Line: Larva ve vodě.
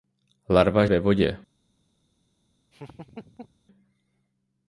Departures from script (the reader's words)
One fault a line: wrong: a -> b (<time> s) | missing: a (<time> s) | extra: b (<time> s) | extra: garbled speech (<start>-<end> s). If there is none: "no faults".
no faults